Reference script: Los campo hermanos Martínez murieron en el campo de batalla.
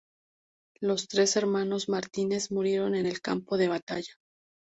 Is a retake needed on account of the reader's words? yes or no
yes